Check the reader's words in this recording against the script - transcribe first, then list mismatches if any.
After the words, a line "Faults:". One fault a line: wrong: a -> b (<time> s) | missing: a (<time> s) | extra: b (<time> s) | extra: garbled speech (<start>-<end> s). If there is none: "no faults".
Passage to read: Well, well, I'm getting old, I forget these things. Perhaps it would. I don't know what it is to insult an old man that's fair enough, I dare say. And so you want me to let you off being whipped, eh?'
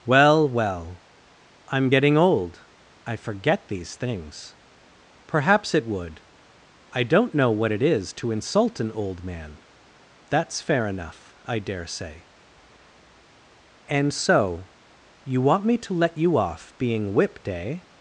Well, well, I'm getting old, I forget these things. Perhaps it would. I don't know what it is to insult an old man that's fair enough, I dare say. And so you want me to let you off being whipped, eh?'
Faults:
no faults